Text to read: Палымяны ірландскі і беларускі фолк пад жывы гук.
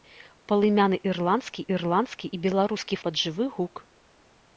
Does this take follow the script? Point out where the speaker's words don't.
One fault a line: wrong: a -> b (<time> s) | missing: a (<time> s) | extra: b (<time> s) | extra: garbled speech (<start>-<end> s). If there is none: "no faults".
extra: ірландскі (1.8 s)
missing: фолк (3.0 s)